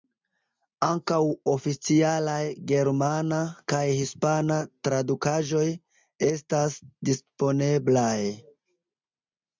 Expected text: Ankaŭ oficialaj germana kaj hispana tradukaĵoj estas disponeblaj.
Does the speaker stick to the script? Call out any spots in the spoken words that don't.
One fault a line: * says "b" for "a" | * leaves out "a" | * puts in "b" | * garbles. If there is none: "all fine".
all fine